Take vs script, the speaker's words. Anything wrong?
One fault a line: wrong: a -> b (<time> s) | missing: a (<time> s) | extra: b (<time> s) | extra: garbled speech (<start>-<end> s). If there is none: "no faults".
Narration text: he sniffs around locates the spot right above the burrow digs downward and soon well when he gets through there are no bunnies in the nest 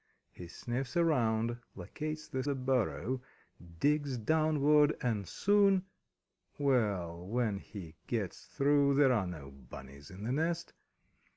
missing: spot right above (2.4 s)